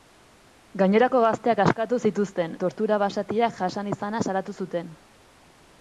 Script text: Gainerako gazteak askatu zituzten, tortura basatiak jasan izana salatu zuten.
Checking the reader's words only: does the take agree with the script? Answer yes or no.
yes